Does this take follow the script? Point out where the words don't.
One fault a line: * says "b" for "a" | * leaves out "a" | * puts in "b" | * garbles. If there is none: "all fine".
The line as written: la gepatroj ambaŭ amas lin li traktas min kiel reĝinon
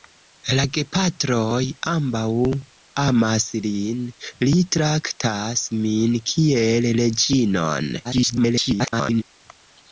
* garbles